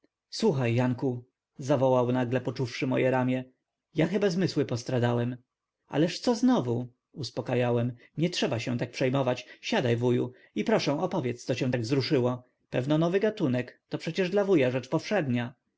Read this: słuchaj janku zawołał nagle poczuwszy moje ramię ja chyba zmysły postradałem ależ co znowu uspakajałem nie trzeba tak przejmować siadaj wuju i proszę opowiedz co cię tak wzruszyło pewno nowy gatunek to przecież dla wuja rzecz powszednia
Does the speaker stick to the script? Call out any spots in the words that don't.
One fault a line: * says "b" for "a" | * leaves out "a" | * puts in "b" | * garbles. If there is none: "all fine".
* puts in "się"